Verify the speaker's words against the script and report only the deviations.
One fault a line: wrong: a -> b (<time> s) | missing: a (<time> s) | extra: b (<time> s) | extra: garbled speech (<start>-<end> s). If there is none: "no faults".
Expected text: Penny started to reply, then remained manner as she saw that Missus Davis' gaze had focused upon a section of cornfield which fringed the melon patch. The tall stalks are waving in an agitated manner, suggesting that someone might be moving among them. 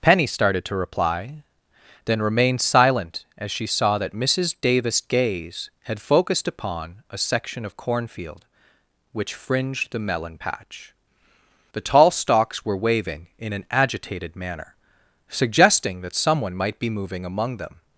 wrong: manner -> silent (2.6 s)
wrong: are -> were (12.6 s)